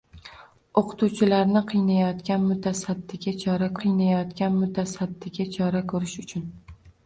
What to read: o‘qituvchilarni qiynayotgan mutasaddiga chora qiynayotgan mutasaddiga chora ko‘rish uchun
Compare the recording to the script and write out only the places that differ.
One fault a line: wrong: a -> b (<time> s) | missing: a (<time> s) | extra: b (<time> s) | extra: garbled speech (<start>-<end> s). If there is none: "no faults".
no faults